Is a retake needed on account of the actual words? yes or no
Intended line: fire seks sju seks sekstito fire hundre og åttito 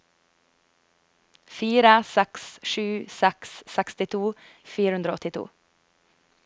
no